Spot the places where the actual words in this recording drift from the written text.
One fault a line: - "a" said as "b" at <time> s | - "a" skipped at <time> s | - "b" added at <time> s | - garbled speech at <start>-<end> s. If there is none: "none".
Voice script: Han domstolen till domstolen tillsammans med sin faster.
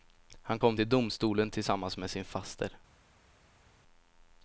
- "domstolen" said as "kom" at 0.6 s